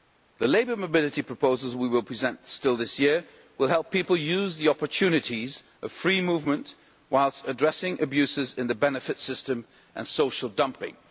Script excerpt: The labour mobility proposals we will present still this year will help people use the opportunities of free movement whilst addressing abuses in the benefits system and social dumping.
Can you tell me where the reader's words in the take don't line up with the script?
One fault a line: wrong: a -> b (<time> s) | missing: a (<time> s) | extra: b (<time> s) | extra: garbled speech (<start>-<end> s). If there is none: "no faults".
no faults